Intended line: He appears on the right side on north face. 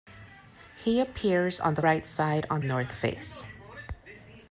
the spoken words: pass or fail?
pass